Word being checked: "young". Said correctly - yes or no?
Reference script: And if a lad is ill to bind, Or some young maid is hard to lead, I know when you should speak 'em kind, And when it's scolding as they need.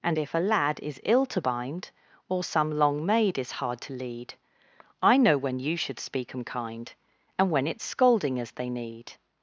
no